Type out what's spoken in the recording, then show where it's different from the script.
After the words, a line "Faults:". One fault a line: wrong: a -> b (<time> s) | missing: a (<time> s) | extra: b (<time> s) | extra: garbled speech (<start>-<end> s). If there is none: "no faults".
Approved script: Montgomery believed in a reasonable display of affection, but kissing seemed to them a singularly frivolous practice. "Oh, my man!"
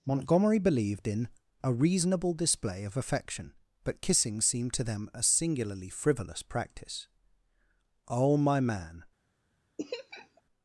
Montgomery believed in a reasonable display of affection, but kissing seemed to them a singularly frivolous practice. "Oh, my man!"
Faults:
no faults